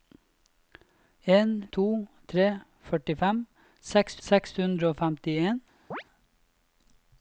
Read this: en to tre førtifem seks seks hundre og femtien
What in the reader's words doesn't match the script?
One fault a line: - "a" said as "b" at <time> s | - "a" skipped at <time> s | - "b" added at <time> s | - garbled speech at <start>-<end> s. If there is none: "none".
none